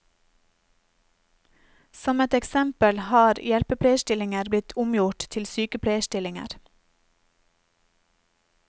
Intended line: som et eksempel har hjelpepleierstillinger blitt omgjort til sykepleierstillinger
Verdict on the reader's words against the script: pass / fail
pass